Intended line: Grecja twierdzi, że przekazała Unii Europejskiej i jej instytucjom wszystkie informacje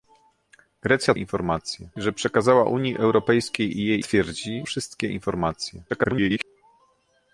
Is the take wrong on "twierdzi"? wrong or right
wrong